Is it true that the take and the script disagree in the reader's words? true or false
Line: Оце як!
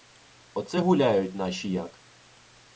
true